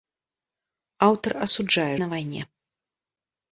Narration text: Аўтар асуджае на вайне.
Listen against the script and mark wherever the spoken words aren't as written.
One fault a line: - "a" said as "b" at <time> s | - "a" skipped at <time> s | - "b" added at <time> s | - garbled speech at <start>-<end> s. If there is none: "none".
none